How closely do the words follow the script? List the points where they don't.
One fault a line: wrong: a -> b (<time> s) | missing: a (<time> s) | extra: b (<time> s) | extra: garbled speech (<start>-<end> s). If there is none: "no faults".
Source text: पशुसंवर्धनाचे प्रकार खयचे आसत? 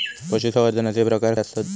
missing: खयचे (1.4 s)